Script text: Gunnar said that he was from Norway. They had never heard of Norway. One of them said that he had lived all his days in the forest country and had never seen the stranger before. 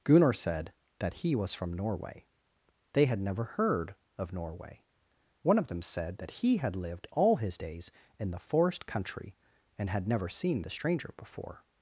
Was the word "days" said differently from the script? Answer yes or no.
no